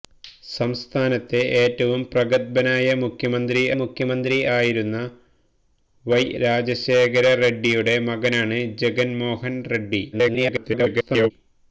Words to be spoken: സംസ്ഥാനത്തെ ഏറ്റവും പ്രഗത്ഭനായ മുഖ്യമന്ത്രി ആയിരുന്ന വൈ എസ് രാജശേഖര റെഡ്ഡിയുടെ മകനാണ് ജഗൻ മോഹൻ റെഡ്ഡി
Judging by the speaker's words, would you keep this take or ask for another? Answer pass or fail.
fail